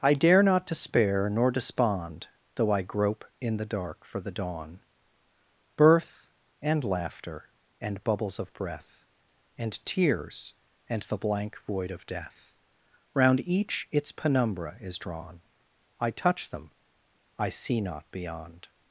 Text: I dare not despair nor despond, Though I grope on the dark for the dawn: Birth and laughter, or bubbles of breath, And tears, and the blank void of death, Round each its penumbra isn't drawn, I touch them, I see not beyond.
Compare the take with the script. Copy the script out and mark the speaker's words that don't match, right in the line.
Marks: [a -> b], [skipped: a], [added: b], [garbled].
I dare not despair nor despond, Though I grope [on -> in] the dark for the dawn: Birth and laughter, [or -> and] bubbles of breath, And tears, and the blank void of death, Round each its penumbra [isn't -> is] drawn, I touch them, I see not beyond.